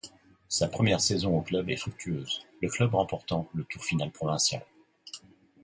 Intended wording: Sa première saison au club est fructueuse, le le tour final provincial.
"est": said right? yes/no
yes